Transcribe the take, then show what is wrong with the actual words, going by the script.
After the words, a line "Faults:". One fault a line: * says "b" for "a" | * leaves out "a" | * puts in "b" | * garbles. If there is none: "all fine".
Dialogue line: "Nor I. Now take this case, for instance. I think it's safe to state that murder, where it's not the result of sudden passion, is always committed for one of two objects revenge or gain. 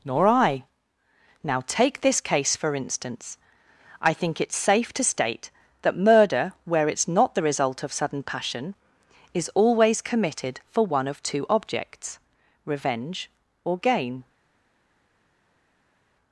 "Nor I. Now take this case, for instance. I think it's safe to state that murder, where it's not the result of sudden passion, is always committed for one of two objects revenge or gain.
Faults:
all fine